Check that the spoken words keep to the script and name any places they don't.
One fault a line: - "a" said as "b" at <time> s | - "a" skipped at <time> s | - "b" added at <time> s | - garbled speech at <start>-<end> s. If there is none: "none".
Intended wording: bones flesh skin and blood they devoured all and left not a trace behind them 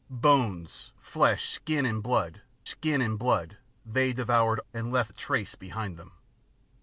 - "skin and blood" added at 2.6 s
- "all" skipped at 4.6 s
- "not" skipped at 5.1 s